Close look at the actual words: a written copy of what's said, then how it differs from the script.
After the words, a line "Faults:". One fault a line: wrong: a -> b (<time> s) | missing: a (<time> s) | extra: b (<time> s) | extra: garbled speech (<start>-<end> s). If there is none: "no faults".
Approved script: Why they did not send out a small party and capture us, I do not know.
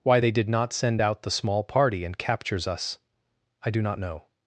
Why they did not send out the small party and captures us, I do not know.
Faults:
wrong: a -> the (1.2 s)
wrong: capture -> captures (2.2 s)